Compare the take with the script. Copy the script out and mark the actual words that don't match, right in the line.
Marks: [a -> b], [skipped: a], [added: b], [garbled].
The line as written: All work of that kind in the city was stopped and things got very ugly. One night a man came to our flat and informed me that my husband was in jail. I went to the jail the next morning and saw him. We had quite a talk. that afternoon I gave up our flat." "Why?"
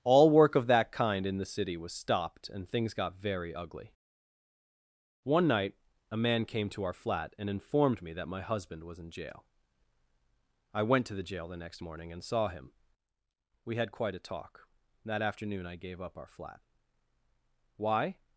All work of that kind in the city was stopped and things got very ugly. One night a man came to our flat and informed me that my husband was in jail. I went to the jail the next morning and saw him. We had quite a talk. that afternoon I gave up our flat." "Why?"